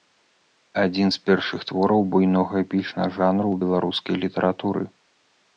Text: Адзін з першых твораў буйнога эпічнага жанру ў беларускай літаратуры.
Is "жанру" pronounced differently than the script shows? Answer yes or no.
no